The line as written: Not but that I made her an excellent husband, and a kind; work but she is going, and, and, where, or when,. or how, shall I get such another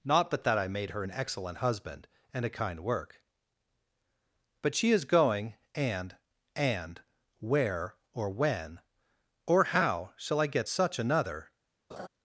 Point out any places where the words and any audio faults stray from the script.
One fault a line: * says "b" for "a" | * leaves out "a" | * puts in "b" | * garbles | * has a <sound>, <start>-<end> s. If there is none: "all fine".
* has a laugh, 11.9-12.1 s